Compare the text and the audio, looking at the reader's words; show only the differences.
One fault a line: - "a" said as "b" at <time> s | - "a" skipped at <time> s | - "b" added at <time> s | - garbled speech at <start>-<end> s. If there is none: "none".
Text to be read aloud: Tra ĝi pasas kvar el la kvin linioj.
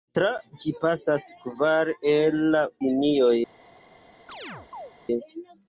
- "kvin" skipped at 2.6 s